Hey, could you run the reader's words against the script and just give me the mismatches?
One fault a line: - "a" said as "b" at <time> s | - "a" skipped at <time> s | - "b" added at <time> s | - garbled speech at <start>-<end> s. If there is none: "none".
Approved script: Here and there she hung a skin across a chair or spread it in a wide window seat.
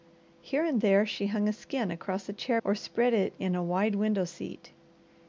none